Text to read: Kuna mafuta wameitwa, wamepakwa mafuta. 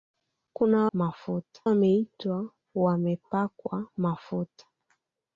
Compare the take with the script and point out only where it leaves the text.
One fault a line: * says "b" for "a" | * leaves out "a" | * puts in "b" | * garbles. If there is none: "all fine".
all fine